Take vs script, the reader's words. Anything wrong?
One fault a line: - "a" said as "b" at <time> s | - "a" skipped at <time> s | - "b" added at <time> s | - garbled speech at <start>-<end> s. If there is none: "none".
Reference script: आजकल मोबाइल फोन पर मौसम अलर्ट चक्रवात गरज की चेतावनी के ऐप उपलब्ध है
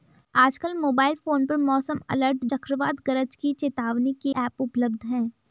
none